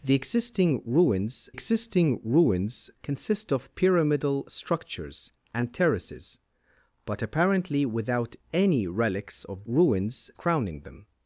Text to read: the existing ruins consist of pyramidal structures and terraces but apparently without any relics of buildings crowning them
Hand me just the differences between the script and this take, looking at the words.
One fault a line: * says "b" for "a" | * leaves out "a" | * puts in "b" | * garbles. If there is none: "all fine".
* puts in "existing ruins"
* says "ruins" for "buildings"